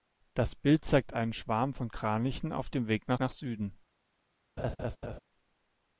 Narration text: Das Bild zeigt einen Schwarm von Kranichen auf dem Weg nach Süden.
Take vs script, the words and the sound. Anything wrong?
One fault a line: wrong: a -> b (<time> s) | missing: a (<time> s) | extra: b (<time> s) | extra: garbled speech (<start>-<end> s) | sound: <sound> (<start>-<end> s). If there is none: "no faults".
extra: nach (3.2 s)
sound: laugh (4.6-5.2 s)